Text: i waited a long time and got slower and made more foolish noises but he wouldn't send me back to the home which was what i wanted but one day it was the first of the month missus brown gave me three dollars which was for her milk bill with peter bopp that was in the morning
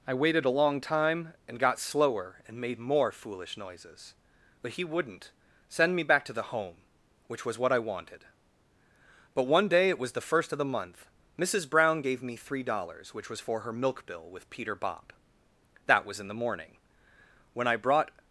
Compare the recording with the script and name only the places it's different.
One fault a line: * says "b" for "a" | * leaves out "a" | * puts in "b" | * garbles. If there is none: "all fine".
* puts in "when i brought"